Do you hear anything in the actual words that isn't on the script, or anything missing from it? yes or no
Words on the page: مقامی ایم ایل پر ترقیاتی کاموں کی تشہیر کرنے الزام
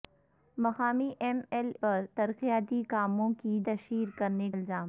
no